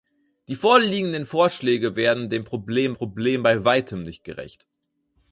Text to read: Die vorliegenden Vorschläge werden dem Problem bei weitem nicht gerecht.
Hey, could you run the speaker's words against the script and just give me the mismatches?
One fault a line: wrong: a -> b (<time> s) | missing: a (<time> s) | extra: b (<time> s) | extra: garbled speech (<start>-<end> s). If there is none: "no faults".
extra: Problem (2.9 s)